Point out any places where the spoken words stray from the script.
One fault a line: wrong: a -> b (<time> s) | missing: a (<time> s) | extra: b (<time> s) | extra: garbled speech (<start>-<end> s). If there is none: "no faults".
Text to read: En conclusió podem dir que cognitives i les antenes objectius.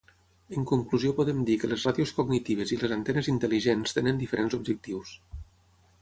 extra: les ràdios (1.7 s)
extra: intel·ligents tenen diferents (3.3 s)